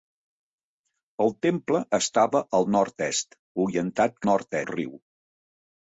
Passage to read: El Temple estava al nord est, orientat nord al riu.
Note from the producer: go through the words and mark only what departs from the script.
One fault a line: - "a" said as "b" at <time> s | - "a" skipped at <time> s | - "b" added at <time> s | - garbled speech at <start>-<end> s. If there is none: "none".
none